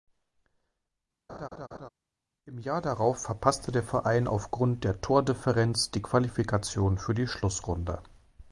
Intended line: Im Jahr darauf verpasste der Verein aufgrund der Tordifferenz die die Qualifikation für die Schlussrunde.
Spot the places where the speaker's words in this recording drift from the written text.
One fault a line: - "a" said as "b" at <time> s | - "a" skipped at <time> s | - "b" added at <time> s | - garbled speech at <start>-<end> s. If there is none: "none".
- "die" skipped at 6.0 s